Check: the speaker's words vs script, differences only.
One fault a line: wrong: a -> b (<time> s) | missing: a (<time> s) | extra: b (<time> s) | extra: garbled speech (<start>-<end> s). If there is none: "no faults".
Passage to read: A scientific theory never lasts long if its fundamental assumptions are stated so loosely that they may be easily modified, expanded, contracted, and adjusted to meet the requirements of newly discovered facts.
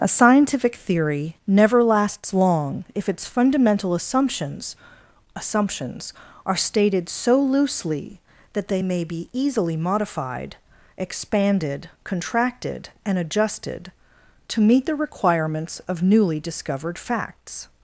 extra: assumptions (5.3 s)